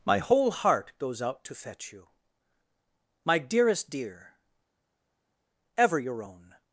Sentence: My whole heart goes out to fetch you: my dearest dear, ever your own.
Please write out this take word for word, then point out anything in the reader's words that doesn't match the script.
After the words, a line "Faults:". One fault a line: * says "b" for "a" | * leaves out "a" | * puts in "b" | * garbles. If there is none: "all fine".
My whole heart goes out to fetch you: my dearest dear, ever your own.
Faults:
all fine